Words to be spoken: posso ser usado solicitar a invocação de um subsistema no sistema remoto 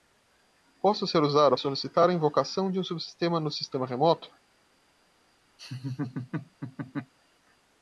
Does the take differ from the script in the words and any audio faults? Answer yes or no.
yes